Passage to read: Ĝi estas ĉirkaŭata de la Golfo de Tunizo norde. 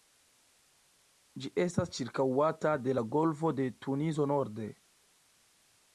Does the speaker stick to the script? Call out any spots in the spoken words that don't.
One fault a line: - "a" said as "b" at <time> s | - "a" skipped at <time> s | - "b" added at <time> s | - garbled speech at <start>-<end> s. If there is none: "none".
none